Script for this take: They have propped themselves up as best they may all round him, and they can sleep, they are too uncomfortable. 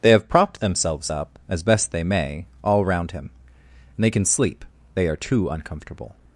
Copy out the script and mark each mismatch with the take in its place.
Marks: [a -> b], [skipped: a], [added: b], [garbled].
They have propped themselves up as best they may all round him, and they can sleep, they are too uncomfortable.